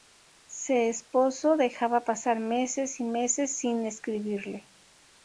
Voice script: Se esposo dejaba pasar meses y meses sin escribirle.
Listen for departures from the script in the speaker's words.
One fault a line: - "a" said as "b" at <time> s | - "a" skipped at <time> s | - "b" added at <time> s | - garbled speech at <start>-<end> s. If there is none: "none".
none